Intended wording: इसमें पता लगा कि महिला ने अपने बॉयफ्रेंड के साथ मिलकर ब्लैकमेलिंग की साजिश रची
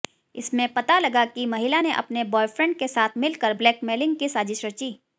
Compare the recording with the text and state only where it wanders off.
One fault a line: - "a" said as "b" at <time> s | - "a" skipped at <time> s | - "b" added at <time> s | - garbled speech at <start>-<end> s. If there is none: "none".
none